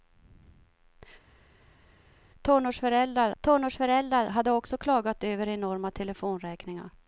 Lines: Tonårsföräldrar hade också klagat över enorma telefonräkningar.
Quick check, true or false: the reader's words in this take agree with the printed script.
false